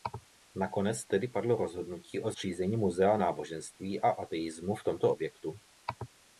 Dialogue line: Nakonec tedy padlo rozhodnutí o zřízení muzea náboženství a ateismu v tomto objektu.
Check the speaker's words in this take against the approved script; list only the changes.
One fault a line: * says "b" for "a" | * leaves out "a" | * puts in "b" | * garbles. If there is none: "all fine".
all fine